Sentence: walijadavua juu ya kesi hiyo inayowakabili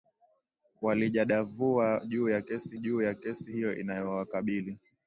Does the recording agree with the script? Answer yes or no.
no